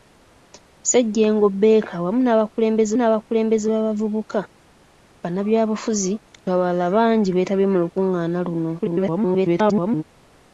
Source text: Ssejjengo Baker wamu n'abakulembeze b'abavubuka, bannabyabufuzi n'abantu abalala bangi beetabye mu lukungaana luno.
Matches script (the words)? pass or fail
fail